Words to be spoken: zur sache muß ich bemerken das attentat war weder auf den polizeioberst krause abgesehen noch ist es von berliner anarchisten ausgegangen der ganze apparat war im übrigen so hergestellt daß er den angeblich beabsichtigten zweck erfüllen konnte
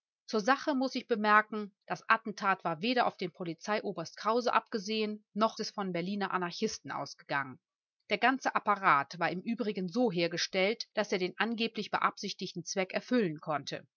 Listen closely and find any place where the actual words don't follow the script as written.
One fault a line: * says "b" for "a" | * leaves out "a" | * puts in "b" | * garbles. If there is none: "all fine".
* leaves out "ist"